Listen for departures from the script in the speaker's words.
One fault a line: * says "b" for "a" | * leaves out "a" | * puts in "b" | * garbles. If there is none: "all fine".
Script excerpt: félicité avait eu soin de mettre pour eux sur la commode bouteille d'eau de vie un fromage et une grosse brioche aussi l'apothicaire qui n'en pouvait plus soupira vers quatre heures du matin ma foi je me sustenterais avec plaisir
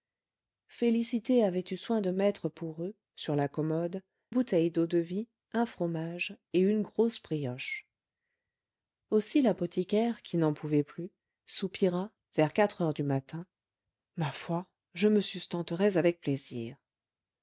all fine